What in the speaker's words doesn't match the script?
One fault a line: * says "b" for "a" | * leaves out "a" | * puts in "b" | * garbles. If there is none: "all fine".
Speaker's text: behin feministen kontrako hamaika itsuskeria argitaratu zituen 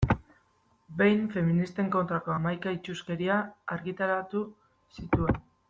all fine